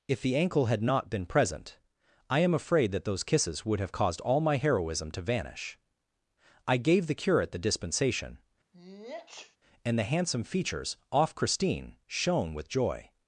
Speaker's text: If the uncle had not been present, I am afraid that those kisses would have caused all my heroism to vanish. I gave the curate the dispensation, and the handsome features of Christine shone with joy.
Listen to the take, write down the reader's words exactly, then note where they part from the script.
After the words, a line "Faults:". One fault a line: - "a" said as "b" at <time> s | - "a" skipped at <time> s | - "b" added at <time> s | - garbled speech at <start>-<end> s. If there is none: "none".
If the ankle had not been present, I am afraid that those kisses would have caused all my heroism to vanish. I gave the curate the dispensation, and the handsome features off Christine shone with joy.
Faults:
- "uncle" said as "ankle" at 0.3 s
- "of" said as "off" at 11.1 s